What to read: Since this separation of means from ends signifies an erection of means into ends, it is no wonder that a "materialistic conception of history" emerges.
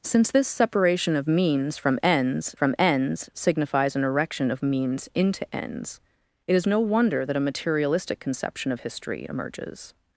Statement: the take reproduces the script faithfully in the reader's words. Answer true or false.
false